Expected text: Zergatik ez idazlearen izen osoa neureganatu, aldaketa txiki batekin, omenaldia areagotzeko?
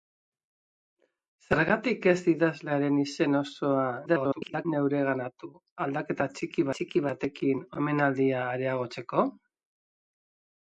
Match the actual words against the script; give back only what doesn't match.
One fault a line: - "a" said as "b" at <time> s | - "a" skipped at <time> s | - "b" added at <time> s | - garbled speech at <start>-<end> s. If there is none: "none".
- garbled speech at 4.1-4.7 s
- "txiki" added at 6.7 s